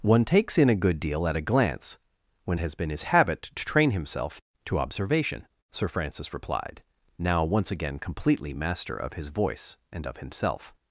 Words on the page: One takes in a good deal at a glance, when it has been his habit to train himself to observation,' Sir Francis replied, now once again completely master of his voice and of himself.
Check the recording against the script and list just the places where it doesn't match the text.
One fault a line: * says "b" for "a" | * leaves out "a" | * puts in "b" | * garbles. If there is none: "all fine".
* leaves out "it"